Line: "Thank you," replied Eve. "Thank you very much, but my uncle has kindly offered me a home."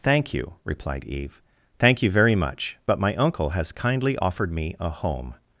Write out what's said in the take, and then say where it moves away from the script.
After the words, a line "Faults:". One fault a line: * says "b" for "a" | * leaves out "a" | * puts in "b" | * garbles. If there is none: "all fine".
"Thank you," replied Eve. "Thank you very much, but my uncle has kindly offered me a home."
Faults:
all fine